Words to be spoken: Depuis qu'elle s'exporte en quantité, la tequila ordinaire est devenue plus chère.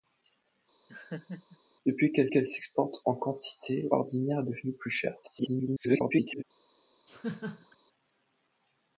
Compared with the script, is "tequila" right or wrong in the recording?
wrong